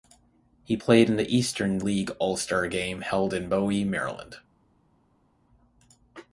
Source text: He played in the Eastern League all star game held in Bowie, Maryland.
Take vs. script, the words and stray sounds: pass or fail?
pass